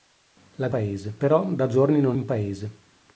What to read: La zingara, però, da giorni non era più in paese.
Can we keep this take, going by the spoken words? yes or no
no